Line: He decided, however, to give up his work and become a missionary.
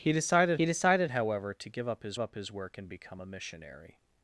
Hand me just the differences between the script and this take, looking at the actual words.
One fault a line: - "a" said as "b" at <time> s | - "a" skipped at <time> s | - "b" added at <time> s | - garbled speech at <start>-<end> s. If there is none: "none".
- "he decided" added at 0.5 s
- "up his" added at 2.2 s